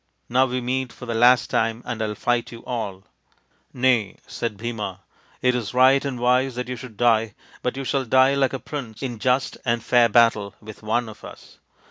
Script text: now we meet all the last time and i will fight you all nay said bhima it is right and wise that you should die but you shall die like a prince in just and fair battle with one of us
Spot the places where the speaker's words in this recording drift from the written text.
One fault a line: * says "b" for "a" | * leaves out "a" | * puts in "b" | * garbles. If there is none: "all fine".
* says "for" for "all"